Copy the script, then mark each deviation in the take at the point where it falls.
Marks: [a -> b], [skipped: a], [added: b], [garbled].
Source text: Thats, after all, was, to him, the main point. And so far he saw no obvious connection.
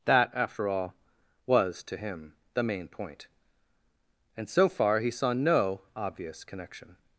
[Thats, -> That] after all, was, to him, the main point. And so far he saw no obvious connection.